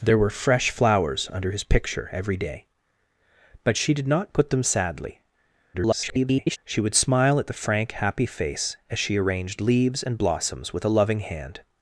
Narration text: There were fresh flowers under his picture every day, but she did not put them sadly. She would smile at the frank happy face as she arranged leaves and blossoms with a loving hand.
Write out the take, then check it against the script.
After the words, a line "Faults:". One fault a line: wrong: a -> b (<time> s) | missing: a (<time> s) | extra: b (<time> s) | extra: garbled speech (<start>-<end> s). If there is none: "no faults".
There were fresh flowers under his picture every day, but she did not put them sadly. [garbled] She would smile at the frank happy face as she arranged leaves and blossoms with a loving hand.
Faults:
extra: garbled speech (5.7-6.6 s)